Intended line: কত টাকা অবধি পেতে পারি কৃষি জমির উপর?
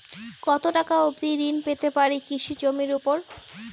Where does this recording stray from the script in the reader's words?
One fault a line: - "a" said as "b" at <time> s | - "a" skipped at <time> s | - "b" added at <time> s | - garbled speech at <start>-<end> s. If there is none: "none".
- "ঋণ" added at 1.4 s